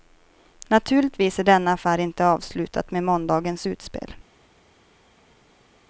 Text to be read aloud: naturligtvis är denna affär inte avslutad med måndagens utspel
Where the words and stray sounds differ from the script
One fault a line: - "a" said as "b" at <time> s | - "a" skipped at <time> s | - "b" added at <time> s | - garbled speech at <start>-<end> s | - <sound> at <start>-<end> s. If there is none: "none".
none